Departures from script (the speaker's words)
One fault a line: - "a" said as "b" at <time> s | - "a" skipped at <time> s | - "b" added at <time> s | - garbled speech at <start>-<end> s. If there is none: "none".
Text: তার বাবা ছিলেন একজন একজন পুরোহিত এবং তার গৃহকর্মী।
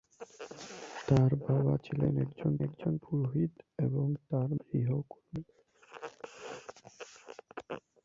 none